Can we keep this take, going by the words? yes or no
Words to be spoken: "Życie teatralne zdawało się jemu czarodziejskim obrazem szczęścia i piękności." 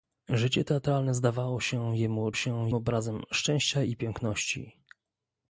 no